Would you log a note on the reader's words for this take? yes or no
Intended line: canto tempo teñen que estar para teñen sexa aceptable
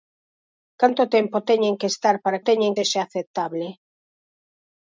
no